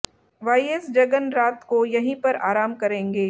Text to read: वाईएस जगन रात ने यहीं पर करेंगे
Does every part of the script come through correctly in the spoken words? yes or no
no